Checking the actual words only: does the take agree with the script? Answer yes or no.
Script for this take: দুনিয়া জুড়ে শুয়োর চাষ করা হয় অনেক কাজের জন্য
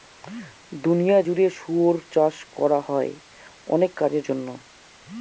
yes